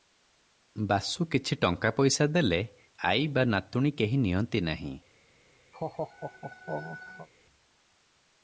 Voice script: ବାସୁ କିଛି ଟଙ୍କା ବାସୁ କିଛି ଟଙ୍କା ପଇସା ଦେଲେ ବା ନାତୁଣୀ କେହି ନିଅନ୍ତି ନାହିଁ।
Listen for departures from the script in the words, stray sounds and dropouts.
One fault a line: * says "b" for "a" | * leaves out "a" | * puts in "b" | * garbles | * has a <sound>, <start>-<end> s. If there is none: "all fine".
* leaves out "ବାସୁ କିଛି ଟଙ୍କା"
* puts in "ଆଈ"
* has a laugh, 5.7-7.3 s